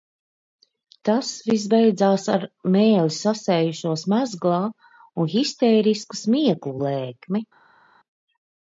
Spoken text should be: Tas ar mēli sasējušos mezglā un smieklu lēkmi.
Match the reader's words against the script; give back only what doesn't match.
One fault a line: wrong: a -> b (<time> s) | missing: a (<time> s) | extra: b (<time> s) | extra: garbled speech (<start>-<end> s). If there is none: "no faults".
extra: viss beidzās (1.5 s)
extra: histērisku (5.3 s)